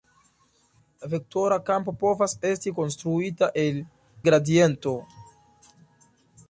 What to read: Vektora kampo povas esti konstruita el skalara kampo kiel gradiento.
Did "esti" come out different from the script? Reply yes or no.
no